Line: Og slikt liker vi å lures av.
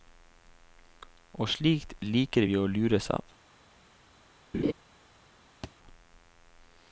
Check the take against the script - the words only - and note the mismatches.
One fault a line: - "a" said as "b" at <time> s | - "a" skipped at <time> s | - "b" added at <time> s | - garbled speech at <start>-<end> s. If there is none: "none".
none